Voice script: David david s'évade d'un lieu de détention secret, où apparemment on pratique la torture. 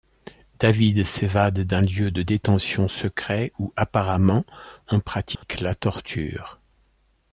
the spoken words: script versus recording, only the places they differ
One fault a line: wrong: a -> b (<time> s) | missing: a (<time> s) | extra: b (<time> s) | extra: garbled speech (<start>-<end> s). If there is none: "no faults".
missing: david (1.1 s)